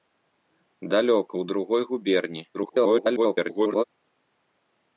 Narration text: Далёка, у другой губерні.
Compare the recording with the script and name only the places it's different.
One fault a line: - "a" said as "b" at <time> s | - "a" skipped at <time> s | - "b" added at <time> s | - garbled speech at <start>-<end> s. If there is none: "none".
- garbled speech at 2.5-3.8 s